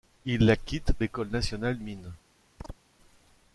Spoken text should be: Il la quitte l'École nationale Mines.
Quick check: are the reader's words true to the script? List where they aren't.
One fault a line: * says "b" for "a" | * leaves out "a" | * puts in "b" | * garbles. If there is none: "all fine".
all fine